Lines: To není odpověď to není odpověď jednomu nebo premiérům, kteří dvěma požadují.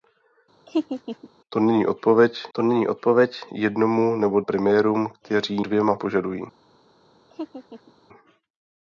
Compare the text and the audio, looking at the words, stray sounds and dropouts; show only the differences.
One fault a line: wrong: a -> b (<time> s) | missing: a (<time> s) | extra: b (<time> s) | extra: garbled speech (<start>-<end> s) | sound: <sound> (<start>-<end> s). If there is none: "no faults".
sound: laugh (0.7-1.3 s)
sound: laugh (7.3-7.9 s)